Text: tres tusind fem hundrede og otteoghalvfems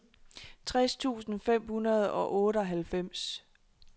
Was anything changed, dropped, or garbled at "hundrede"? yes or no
no